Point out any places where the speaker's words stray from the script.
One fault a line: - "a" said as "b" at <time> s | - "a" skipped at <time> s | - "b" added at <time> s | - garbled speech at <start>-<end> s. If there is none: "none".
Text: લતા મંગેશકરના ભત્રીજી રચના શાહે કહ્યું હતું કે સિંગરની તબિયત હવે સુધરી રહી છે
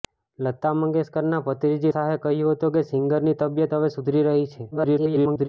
- "રચના" skipped at 1.9 s
- garbled speech at 4.7-5.5 s